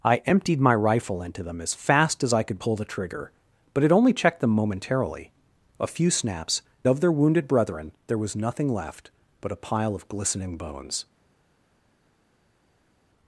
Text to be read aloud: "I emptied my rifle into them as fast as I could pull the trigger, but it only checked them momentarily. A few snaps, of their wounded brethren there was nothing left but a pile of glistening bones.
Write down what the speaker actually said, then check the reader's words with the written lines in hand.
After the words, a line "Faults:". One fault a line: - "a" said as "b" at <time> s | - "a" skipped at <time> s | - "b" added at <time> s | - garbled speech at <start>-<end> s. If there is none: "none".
"I emptied my rifle into them as fast as I could pull the trigger, but it only checked them momentarily. A few snaps, of their wounded brethren there was nothing left but a pile of glistening bones.
Faults:
none